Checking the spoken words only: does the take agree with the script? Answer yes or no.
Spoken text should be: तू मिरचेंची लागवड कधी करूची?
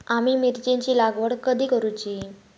no